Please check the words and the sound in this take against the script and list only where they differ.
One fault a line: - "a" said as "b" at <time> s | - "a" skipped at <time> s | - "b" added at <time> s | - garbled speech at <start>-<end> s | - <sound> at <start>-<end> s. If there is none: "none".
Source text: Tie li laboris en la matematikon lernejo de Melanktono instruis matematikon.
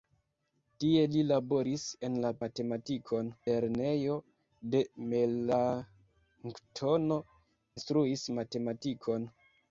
none